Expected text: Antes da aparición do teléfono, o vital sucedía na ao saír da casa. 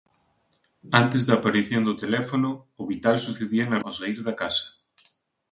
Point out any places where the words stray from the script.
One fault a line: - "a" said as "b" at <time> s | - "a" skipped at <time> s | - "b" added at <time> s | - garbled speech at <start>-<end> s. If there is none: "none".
none